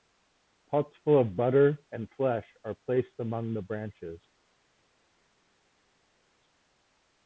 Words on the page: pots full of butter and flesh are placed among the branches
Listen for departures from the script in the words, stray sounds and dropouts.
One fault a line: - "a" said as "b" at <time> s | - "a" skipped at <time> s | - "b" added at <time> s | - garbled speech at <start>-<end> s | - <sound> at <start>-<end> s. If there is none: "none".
none